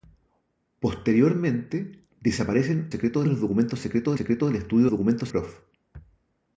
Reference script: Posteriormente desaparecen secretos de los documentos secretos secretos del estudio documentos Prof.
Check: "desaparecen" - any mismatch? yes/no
no